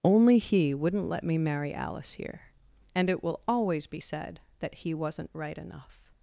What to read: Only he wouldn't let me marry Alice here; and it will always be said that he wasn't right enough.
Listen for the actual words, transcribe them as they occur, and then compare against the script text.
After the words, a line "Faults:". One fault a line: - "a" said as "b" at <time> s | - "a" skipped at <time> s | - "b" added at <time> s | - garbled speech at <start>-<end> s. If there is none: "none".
Only he wouldn't let me marry Alice here; and it will always be said that he wasn't right enough.
Faults:
none